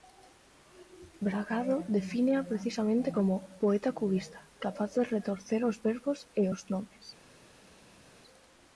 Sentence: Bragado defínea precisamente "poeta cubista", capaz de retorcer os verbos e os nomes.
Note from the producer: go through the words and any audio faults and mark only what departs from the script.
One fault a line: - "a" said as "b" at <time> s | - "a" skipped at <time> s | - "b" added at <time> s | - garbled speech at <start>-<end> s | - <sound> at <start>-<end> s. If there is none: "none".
- "como" added at 3.1 s